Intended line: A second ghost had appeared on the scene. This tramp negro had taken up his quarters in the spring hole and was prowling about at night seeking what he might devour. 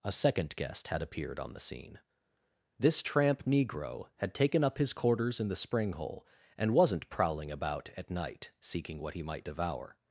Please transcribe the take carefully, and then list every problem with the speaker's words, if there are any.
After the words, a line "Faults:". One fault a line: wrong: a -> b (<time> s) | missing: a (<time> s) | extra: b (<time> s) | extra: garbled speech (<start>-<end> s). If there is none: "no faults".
A second guest had appeared on the scene. This tramp negro had taken up his quarters in the spring hole and wasn't prowling about at night seeking what he might devour.
Faults:
wrong: ghost -> guest (0.6 s)
wrong: was -> wasn't (6.7 s)